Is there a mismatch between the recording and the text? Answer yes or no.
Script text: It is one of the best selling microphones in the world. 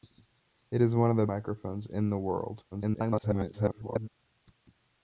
yes